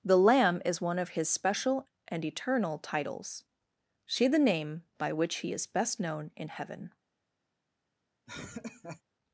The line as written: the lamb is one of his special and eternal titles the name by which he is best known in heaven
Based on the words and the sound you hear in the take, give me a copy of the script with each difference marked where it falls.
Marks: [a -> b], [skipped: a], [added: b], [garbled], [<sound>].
the lamb is one of his special and eternal titles [added: see] the name by which he is best known in heaven [laugh]